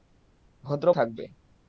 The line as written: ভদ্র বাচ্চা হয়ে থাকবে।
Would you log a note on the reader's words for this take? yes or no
yes